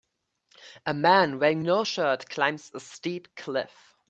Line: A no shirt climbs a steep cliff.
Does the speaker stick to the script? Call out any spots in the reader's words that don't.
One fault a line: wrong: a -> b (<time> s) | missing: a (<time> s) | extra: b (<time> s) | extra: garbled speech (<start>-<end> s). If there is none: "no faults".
extra: man wearing (0.9 s)